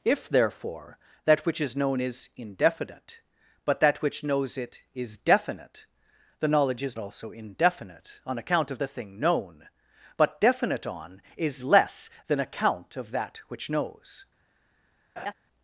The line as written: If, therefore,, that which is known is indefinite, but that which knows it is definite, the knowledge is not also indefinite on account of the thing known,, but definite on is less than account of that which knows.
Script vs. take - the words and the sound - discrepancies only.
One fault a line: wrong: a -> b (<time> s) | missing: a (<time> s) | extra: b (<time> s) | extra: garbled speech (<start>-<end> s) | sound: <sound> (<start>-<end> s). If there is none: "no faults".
missing: not (7.0 s)
sound: laugh (15.2-15.3 s)